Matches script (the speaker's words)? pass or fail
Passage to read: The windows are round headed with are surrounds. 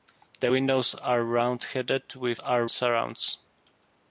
pass